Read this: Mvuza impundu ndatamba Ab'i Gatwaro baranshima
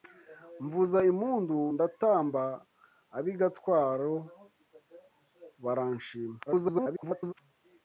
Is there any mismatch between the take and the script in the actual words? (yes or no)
yes